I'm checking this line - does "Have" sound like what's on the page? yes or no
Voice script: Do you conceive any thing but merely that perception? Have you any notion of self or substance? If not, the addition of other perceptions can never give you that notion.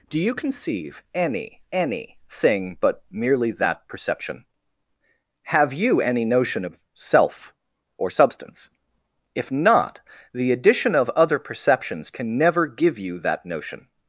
yes